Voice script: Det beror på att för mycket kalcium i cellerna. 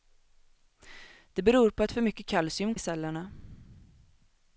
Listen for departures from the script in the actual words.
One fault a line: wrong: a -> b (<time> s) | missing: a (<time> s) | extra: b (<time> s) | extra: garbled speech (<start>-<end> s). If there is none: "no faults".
no faults